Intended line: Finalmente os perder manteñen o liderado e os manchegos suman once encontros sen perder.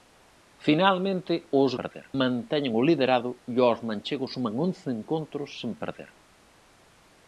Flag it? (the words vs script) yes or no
no